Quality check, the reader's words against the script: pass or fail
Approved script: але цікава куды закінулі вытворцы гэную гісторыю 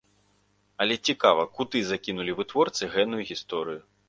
pass